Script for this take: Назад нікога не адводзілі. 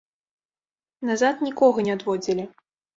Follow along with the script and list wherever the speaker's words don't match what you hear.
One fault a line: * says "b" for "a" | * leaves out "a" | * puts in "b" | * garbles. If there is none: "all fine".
all fine